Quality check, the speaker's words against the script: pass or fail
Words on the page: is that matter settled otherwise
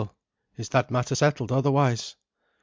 pass